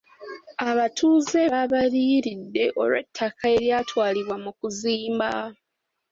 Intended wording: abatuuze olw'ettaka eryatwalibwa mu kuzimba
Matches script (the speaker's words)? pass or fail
fail